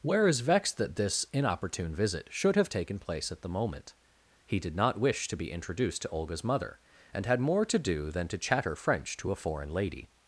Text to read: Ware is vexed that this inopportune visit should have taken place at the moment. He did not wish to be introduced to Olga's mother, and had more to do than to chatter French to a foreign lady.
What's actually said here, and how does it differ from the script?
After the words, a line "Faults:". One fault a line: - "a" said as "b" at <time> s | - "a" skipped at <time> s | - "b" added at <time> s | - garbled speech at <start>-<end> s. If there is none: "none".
Ware is vexed that this inopportune visit should have taken place at the moment. He did not wish to be introduced to Olga's mother, and had more to do than to chatter French to a foreign lady.
Faults:
none